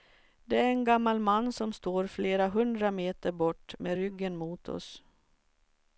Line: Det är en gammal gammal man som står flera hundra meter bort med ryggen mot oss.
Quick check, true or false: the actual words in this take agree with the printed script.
false